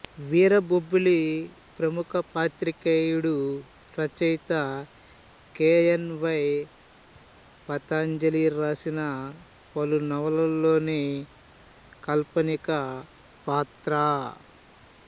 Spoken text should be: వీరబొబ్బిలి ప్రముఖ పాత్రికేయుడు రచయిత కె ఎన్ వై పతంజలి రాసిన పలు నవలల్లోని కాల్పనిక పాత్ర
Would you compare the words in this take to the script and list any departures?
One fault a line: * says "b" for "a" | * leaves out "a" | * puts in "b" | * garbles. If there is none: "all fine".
all fine